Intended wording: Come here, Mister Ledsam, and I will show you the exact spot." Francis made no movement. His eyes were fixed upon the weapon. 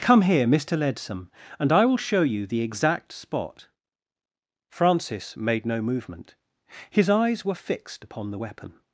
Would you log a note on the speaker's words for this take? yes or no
no